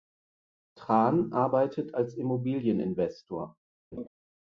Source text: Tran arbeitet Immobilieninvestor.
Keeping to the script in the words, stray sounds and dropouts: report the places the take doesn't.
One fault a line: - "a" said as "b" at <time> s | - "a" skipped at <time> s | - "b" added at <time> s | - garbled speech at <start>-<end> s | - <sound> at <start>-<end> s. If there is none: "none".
- "als" added at 1.9 s
- laugh at 3.9-4.1 s